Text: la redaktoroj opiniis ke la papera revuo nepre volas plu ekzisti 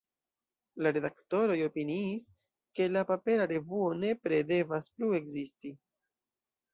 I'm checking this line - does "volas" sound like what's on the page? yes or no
no